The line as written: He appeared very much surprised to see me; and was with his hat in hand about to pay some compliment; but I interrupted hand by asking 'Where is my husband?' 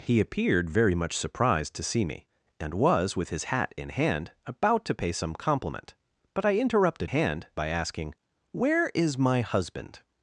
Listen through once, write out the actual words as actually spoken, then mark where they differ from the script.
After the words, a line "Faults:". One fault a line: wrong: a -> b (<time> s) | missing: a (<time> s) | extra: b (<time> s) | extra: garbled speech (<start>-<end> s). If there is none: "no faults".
He appeared very much surprised to see me; and was with his hat in hand about to pay some compliment; but I interrupted hand by asking 'Where is my husband?'
Faults:
no faults